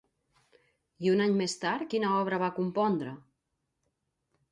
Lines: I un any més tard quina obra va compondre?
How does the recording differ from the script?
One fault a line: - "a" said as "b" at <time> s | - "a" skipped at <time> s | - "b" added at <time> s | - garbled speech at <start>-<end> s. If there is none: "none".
none